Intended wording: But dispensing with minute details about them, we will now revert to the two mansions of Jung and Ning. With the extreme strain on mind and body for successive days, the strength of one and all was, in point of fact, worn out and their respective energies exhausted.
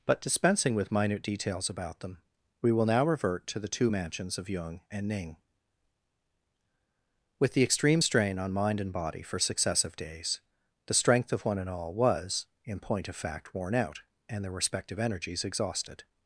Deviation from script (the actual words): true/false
false